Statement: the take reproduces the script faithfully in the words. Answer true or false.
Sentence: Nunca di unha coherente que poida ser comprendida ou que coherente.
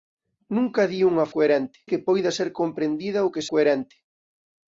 true